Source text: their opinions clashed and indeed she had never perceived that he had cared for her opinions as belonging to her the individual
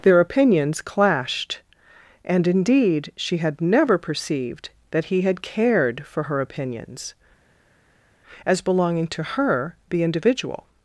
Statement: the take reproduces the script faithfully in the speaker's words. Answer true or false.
true